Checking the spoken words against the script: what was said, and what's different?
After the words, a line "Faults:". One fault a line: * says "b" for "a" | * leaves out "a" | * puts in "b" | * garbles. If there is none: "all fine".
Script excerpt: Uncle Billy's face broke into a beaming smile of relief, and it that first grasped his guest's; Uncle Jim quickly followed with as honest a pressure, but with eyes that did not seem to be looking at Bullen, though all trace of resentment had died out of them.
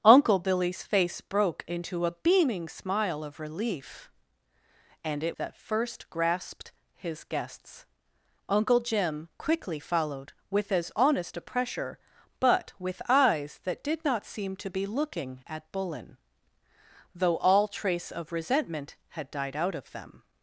Uncle Billy's face broke into a beaming smile of relief, and it that first grasped his guest's; Uncle Jim quickly followed with as honest a pressure, but with eyes that did not seem to be looking at Bullen, though all trace of resentment had died out of them.
Faults:
all fine